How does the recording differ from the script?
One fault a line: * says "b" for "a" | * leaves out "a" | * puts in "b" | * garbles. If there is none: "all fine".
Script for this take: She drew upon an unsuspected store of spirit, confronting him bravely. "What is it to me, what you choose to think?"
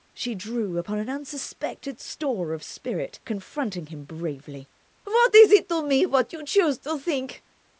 all fine